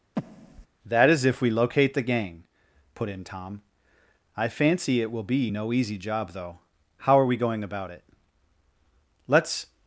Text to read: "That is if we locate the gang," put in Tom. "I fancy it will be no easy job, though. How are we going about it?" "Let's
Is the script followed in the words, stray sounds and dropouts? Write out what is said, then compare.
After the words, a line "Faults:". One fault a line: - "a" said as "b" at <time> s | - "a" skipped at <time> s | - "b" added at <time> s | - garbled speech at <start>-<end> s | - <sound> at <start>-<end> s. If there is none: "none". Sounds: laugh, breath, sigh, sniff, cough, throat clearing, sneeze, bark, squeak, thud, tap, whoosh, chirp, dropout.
"That is if we locate the gang," put in Tom. "I fancy it will be no easy job, though. How are we going about it?" "Let's
Faults:
- breath at 0.2-0.7 s